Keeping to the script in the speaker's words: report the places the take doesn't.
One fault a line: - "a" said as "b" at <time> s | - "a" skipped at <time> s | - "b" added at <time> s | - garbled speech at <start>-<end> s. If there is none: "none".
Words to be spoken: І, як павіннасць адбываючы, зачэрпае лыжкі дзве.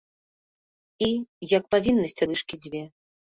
- "адбываючы зачэрпае" skipped at 2.2 s